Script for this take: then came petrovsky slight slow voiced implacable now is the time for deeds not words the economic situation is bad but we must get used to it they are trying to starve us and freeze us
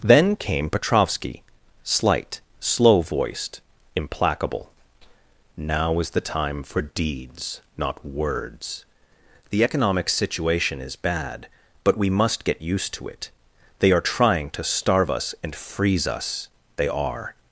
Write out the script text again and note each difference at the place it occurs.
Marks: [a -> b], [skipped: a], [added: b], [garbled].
then came petrovsky slight slow voiced implacable now is the time for deeds not words the economic situation is bad but we must get used to it they are trying to starve us and freeze us [added: they are]